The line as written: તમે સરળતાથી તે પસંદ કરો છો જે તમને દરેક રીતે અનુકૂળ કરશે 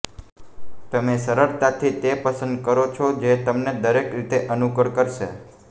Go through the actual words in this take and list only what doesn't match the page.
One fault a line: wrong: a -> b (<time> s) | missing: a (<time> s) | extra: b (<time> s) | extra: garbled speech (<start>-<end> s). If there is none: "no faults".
no faults